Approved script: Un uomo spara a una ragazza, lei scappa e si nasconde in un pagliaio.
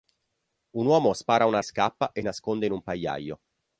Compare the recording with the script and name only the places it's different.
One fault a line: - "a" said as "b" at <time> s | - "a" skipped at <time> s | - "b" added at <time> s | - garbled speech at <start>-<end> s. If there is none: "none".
- "ragazza lei" skipped at 1.6 s
- "si" skipped at 2.2 s